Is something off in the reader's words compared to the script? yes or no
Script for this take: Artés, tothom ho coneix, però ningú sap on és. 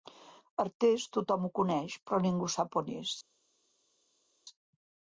no